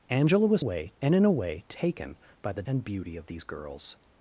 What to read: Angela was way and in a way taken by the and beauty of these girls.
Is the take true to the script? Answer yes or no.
yes